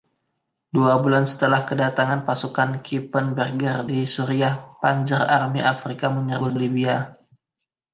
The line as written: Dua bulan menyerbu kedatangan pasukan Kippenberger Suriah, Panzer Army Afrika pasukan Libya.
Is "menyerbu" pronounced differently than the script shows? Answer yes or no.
yes